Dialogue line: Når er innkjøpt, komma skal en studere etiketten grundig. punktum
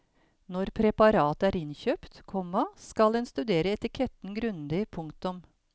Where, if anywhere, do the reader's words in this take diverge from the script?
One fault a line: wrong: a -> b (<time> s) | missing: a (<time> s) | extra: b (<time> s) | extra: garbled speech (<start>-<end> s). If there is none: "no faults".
extra: preparatet (0.8 s)